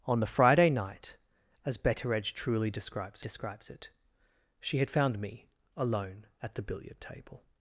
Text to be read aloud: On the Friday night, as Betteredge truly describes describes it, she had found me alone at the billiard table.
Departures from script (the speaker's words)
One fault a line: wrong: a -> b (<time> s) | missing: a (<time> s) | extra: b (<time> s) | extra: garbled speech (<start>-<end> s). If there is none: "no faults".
no faults